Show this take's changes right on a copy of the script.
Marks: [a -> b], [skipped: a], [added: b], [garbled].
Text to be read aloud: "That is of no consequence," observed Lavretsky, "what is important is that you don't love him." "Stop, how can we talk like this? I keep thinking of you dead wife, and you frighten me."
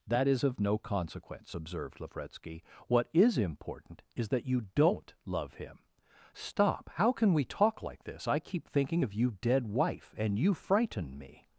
"That is of no consequence," observed Lavretsky, "what is important is that you don't love him." "Stop, how can we talk like this? I keep thinking of you dead wife, and you frighten me."